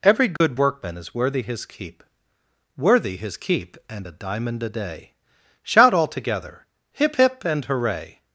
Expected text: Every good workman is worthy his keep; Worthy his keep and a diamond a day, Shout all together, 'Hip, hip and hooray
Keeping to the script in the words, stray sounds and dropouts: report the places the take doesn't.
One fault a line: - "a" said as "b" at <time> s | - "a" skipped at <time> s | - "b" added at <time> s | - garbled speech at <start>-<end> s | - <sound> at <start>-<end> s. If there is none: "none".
- dropout at 0.4-0.4 s